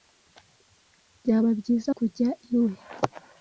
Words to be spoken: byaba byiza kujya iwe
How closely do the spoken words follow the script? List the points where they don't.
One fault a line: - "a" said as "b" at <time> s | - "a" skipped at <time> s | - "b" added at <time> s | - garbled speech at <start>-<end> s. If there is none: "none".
none